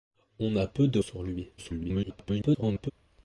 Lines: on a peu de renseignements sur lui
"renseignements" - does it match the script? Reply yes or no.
no